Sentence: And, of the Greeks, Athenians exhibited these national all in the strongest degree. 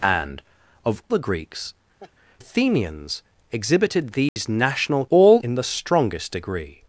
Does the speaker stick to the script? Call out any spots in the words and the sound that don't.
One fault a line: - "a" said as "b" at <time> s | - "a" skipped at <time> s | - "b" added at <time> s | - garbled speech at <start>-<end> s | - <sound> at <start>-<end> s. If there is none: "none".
- laugh at 2.0-2.1 s
- dropout at 4.3-4.4 s